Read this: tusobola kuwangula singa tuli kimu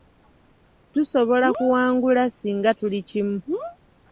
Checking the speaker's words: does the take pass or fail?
pass